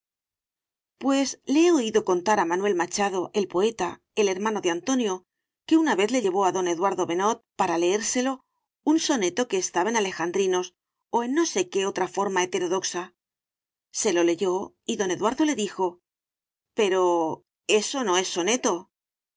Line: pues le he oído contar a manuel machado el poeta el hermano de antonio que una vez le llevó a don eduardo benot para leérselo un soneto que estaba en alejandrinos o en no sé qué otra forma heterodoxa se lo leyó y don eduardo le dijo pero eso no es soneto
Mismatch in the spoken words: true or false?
false